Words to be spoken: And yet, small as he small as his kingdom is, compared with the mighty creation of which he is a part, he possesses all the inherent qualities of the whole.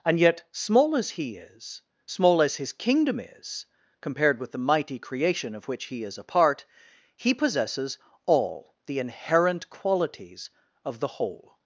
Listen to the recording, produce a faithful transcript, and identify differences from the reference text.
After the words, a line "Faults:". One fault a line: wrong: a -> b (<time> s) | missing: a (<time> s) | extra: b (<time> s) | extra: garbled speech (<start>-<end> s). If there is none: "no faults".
And yet, small as he is, small as his kingdom is, compared with the mighty creation of which he is a part, he possesses all the inherent qualities of the whole.
Faults:
extra: is (1.4 s)